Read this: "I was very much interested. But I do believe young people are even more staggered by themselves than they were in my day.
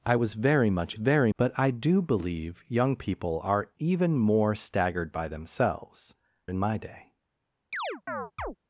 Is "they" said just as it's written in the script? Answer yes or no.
no